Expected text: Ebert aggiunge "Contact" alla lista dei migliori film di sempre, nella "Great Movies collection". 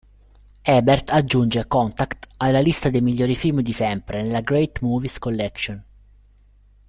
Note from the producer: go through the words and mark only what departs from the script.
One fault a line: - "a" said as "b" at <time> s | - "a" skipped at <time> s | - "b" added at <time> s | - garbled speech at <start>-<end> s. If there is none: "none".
none